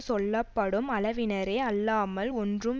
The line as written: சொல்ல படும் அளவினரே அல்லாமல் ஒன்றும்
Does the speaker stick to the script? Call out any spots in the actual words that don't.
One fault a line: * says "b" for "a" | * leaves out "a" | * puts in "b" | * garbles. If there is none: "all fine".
all fine